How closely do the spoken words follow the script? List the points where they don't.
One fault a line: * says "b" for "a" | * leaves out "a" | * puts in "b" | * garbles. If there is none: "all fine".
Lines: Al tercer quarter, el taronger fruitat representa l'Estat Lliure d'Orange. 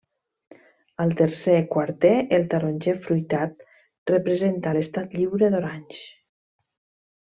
all fine